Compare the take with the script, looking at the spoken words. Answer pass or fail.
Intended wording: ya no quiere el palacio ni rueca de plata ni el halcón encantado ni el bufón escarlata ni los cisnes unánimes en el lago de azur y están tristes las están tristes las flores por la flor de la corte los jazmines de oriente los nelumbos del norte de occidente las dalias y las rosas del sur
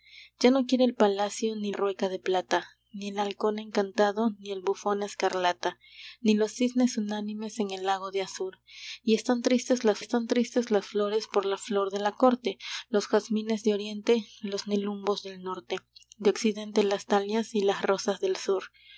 pass